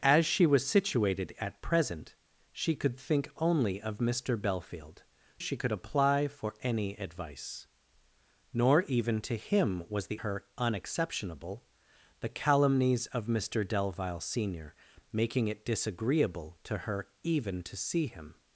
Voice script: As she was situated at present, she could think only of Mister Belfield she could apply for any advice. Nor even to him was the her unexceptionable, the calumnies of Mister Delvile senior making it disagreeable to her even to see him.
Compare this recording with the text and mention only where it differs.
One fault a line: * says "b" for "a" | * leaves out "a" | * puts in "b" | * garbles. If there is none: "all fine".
all fine